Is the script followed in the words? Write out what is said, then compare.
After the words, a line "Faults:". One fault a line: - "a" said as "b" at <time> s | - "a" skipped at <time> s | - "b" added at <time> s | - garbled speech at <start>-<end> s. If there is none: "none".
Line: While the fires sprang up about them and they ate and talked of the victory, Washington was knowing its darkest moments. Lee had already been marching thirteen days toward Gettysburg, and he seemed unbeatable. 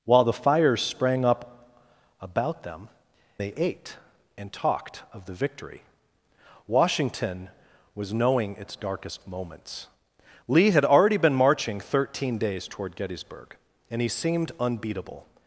While the fires sprang up about them they ate and talked of the victory, Washington was knowing its darkest moments. Lee had already been marching thirteen days toward Gettysburg, and he seemed unbeatable.
Faults:
- "and" skipped at 2.9 s